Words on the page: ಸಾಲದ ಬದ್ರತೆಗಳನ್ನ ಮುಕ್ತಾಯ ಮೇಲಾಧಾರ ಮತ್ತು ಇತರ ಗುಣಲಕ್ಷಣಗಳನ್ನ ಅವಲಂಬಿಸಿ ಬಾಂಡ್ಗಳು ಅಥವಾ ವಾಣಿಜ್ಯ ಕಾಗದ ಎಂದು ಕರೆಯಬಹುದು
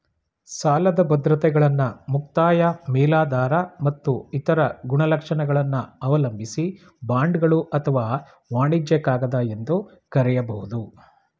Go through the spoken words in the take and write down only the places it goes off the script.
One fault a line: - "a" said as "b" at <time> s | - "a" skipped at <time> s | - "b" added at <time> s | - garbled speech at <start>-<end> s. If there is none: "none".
none